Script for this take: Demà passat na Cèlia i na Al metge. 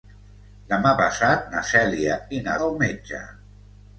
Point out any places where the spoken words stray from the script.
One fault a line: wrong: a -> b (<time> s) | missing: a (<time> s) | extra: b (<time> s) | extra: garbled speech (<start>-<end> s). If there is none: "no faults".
no faults